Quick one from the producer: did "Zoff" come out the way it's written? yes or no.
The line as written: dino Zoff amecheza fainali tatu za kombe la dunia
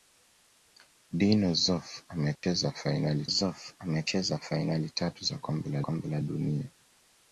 yes